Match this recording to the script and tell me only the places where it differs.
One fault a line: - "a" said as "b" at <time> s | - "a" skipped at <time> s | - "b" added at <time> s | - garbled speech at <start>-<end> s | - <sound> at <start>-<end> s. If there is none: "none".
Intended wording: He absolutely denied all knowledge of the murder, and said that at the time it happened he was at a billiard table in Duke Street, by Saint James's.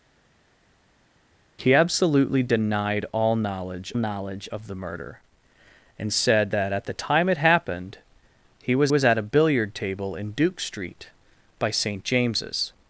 - "knowledge" added at 4.0 s
- "was" added at 8.9 s